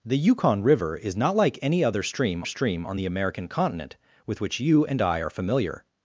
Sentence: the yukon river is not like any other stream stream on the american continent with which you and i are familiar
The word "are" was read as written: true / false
true